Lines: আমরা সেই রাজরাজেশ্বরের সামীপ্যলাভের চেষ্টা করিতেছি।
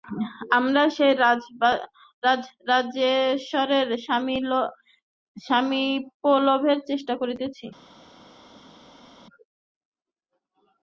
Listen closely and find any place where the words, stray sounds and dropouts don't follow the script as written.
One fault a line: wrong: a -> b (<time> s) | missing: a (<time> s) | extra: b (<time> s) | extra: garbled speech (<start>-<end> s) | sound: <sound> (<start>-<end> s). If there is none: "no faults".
no faults